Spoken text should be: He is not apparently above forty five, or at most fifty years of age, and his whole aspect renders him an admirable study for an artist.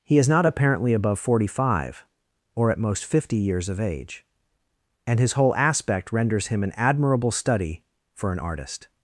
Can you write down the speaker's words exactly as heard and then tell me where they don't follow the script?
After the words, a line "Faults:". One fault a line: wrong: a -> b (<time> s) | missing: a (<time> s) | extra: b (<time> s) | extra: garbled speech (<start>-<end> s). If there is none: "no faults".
He is not apparently above forty five, or at most fifty years of age, and his whole aspect renders him an admirable study for an artist.
Faults:
no faults